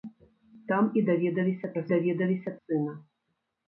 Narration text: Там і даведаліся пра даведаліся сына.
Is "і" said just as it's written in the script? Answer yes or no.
yes